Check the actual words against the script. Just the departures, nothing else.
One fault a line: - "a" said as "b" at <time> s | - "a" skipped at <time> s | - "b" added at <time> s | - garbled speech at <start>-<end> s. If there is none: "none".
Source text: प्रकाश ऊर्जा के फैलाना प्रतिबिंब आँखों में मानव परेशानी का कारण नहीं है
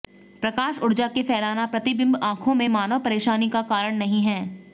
none